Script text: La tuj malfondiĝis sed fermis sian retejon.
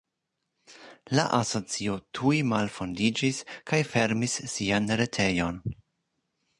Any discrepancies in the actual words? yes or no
yes